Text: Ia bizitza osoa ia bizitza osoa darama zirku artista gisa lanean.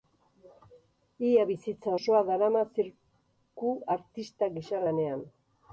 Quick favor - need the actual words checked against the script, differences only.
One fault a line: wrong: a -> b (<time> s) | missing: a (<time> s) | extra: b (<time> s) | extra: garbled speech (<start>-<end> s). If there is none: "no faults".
missing: ia bizitza osoa (2.2 s)